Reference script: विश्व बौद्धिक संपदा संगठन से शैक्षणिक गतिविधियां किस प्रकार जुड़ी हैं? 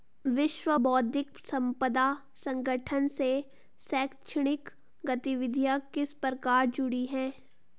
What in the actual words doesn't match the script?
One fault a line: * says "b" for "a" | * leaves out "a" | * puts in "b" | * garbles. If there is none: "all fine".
all fine